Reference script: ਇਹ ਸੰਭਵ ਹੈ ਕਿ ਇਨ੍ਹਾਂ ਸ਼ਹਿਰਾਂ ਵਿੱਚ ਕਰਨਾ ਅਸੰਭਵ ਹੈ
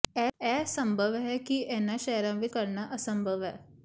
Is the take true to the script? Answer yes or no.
yes